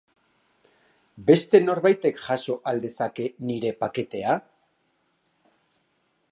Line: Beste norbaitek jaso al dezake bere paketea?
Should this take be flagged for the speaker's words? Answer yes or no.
yes